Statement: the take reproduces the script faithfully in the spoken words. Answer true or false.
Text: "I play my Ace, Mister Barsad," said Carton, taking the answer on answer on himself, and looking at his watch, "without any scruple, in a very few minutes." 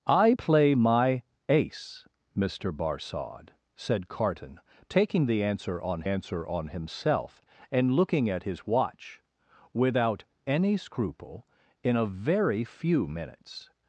true